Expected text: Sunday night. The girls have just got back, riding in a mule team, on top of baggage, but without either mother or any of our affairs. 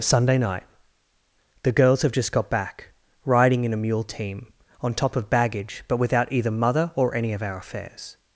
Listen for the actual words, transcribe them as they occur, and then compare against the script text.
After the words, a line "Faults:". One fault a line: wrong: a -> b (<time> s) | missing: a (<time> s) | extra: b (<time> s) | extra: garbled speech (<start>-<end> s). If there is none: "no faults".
Sunday night. The girls have just got back, riding in a mule team, on top of baggage, but without either mother or any of our affairs.
Faults:
no faults